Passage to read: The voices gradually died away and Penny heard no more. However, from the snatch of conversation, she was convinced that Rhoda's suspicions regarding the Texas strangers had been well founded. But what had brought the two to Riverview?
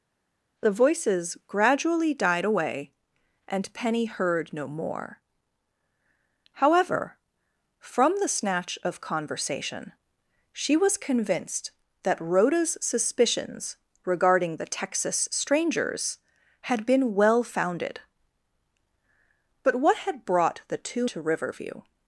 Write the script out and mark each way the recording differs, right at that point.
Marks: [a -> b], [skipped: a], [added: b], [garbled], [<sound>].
The voices gradually died away and Penny heard no more. However, from the snatch of conversation, she was convinced that Rhoda's suspicions regarding the Texas strangers had been well founded. But what had brought the two to Riverview?